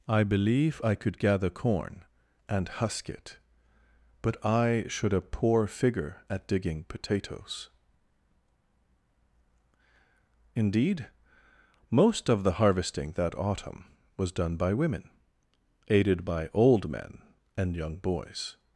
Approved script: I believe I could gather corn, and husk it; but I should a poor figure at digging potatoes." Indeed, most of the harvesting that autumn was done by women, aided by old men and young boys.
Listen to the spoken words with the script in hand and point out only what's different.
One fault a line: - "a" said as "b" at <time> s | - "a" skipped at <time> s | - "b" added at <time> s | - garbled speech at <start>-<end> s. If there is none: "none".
none